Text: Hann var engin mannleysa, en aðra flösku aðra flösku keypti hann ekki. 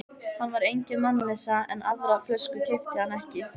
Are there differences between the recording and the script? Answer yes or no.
yes